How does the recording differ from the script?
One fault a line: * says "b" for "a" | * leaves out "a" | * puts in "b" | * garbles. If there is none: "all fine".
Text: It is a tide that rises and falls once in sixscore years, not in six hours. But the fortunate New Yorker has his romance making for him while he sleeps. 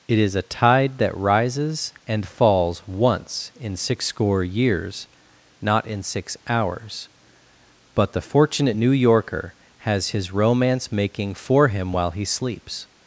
all fine